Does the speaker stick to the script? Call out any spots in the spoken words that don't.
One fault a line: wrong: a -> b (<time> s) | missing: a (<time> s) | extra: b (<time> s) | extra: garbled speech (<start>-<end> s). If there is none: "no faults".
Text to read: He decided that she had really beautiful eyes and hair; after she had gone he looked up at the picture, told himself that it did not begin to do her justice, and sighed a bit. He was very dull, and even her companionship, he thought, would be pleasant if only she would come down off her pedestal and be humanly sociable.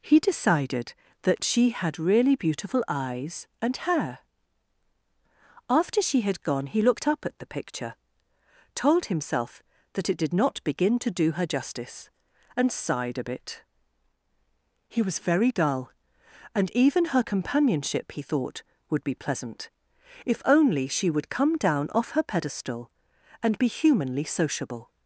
no faults